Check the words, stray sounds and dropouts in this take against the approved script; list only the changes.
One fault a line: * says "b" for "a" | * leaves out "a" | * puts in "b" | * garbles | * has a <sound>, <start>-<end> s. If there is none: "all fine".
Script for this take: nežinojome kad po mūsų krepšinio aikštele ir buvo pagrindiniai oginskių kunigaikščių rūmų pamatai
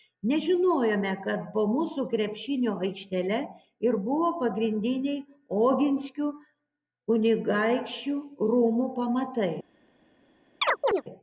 * has a chirp, 10.6-11.0 s